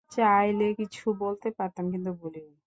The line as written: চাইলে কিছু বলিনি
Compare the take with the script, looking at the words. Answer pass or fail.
fail